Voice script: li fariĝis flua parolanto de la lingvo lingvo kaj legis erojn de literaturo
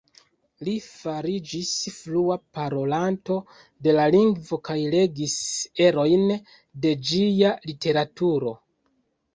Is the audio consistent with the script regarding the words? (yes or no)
no